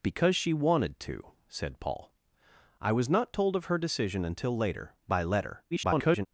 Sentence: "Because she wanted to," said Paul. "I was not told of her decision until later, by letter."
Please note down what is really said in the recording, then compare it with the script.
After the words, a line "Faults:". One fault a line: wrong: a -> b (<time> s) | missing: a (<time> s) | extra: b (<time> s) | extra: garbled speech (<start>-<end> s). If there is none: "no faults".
"Because she wanted to," said Paul. "I was not told of her decision until later, by letter." [garbled]
Faults:
extra: garbled speech (5.7-6.3 s)